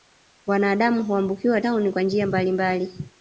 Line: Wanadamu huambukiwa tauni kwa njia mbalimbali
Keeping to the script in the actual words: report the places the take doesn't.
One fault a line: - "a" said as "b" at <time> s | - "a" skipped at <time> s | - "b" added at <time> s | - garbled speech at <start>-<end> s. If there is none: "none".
none